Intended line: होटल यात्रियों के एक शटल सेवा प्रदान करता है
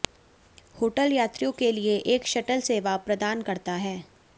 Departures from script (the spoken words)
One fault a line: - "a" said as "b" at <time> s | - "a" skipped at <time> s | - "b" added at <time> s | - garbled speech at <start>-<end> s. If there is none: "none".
- "लिए" added at 1.7 s